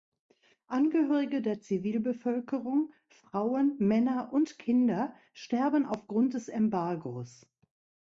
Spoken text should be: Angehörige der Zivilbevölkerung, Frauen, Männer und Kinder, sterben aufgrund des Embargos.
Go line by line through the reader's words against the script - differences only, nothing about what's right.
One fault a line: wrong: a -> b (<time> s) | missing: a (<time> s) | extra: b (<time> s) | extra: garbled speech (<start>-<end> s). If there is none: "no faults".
no faults